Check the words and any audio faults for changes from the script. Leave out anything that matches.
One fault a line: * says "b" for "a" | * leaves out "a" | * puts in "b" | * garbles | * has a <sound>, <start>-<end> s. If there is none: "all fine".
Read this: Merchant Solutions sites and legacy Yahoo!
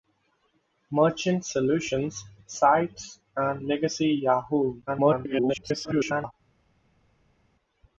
* garbles